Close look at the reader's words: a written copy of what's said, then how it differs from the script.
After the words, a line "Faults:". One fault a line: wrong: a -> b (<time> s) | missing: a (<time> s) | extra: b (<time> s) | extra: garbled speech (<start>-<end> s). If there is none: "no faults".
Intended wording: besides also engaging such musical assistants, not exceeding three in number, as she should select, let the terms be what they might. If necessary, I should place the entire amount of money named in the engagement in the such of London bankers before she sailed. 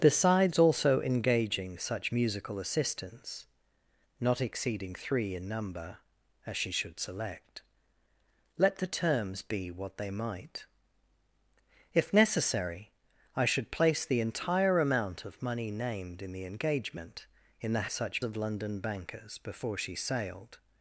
besides also engaging such musical assistants, not exceeding three in number, as she should select, let the terms be what they might. If necessary, I should place the entire amount of money named in the engagement in the such of London bankers before she sailed.
Faults:
no faults